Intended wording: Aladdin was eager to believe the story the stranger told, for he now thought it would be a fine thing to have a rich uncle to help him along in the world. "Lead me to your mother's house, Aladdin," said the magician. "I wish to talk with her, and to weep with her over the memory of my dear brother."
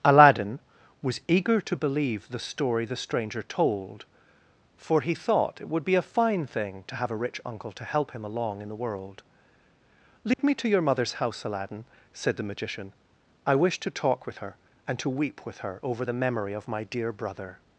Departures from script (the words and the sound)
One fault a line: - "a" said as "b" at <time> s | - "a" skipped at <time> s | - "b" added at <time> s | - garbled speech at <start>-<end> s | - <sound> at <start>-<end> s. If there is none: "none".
- "now" skipped at 5.1 s
- dropout at 10.3-10.4 s